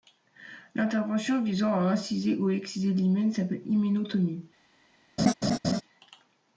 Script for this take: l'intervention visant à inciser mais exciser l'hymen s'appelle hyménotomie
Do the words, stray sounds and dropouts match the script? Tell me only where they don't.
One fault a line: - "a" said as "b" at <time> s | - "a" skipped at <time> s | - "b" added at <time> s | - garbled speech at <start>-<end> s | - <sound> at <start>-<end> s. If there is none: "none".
- "mais" said as "ou" at 2.4 s
- laugh at 5.2-5.8 s